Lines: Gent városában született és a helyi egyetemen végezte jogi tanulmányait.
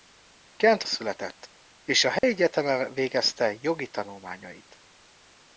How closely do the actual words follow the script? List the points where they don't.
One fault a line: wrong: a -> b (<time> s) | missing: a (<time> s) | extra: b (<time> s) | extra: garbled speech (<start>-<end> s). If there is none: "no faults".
missing: városában (0.8 s)